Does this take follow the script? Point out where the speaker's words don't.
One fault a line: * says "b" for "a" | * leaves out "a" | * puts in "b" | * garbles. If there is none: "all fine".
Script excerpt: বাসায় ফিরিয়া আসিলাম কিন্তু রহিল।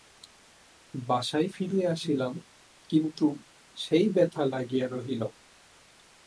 * puts in "সেই ব্যথা লাগিয়া"